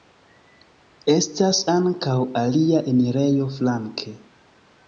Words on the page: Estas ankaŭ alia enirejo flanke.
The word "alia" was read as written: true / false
true